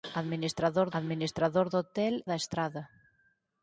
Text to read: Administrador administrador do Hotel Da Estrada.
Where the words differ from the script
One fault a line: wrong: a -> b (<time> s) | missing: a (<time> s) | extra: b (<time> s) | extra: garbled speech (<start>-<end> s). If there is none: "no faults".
no faults